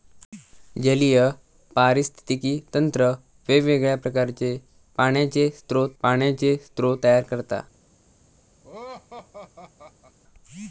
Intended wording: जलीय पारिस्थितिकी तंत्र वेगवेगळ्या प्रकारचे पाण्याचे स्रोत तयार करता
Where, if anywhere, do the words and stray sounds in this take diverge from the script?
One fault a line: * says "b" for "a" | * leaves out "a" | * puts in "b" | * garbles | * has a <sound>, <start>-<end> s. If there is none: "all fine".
* puts in "पाण्याचे स्रोत"
* has a laugh, 8.6-10.2 s